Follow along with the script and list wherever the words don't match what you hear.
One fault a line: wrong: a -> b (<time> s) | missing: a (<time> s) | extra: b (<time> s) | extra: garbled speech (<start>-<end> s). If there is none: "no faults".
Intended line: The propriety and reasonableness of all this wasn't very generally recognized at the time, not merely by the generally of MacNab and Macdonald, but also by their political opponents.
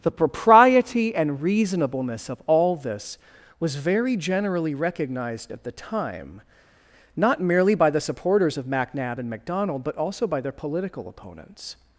wrong: wasn't -> was (3.6 s)
wrong: generally -> supporters (8.0 s)